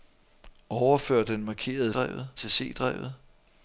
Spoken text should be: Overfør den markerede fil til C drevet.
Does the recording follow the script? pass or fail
fail